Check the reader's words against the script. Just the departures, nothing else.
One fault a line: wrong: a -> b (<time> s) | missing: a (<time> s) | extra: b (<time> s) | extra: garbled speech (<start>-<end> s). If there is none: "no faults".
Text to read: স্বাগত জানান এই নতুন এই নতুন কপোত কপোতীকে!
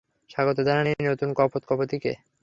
missing: এই নতুন (1.3 s)